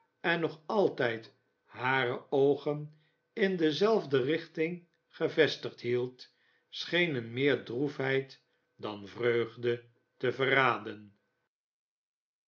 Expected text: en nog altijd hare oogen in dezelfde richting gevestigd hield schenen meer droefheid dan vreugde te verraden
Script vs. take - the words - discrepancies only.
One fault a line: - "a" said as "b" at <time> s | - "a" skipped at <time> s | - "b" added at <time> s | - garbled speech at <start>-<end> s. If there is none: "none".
none